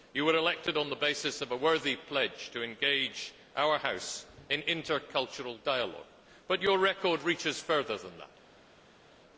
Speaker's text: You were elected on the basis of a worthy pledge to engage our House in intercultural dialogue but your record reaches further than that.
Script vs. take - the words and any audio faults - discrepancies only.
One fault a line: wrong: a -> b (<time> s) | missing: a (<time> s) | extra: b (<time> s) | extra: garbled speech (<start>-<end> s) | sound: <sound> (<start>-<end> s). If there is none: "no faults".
no faults